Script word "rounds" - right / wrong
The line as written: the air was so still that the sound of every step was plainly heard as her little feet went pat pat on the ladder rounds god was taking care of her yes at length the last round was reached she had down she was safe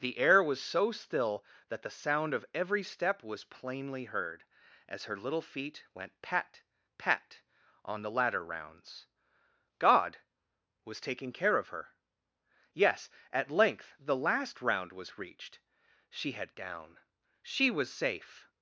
right